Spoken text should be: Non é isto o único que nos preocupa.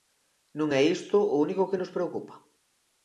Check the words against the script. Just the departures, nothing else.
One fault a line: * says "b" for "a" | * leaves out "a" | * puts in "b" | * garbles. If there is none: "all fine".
all fine